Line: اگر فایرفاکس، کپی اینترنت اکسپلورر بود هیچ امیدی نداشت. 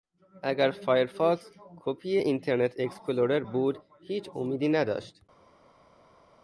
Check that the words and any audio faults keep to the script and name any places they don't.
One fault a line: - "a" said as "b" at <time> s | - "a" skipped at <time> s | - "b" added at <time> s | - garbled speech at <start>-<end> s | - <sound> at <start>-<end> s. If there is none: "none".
none